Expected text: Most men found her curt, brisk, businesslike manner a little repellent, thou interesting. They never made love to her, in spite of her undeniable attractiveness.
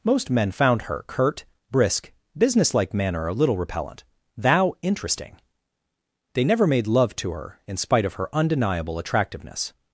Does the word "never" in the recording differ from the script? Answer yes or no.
no